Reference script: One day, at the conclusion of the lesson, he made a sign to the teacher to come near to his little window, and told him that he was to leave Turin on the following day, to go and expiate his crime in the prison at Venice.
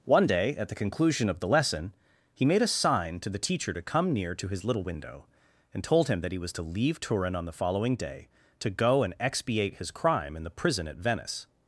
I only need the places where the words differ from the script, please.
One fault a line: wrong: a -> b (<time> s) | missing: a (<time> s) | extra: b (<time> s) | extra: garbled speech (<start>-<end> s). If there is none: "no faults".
no faults